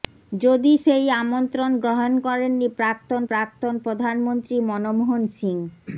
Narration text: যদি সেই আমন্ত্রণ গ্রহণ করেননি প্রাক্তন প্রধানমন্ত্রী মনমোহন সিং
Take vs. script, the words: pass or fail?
fail